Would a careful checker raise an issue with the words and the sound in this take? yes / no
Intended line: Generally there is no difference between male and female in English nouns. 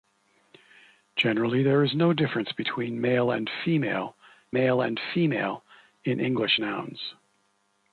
yes